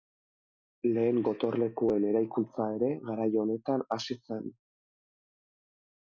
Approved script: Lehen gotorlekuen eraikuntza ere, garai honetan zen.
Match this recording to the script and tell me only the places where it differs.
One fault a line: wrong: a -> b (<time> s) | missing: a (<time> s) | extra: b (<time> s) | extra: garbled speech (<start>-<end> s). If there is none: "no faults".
extra: hasi (4.0 s)